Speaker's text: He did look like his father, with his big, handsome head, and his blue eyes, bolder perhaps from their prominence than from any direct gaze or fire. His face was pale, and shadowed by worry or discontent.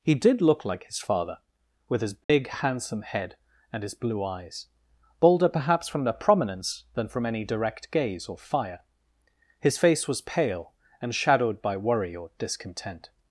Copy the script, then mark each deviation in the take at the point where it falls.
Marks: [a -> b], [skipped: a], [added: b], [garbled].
He did look like his father, with his big, handsome head, and his blue eyes, bolder perhaps from their prominence than from any direct gaze or fire. His face was pale, and shadowed by worry or discontent.